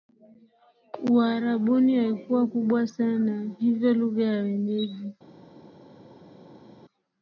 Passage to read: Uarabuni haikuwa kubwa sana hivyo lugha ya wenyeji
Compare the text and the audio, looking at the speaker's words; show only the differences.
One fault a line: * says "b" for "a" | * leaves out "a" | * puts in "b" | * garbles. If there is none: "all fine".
all fine